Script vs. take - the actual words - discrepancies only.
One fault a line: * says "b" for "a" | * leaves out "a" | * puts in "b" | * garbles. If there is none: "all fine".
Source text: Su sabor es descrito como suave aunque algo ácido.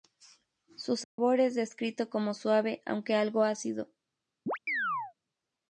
all fine